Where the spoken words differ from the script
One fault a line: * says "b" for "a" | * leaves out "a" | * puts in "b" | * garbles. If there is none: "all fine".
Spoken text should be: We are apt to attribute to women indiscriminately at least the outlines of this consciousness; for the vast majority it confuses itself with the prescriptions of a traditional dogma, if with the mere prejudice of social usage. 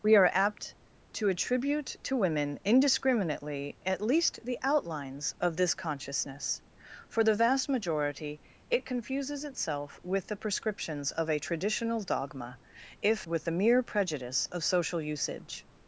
all fine